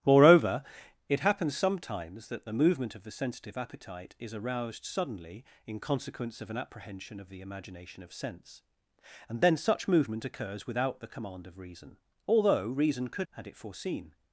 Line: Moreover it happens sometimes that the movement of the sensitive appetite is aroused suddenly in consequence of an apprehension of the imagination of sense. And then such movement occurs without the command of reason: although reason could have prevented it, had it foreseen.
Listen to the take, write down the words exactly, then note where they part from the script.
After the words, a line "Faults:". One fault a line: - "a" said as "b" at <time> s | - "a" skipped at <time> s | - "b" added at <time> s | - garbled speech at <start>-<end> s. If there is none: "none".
Moreover it happens sometimes that the movement of the sensitive appetite is aroused suddenly in consequence of an apprehension of the imagination of sense. And then such movement occurs without the command of reason: although reason could had it foreseen.
Faults:
- "have prevented it" skipped at 13.3 s